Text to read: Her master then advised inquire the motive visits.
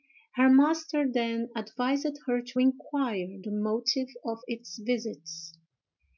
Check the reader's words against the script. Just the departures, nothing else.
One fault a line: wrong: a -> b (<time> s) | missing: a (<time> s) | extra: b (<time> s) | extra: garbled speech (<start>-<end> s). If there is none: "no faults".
extra: her to (2.2 s)
extra: of its (4.2 s)